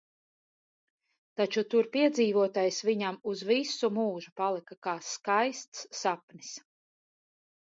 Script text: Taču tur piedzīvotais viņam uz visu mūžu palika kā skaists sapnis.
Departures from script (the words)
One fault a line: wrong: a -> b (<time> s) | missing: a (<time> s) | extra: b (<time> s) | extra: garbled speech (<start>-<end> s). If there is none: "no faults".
no faults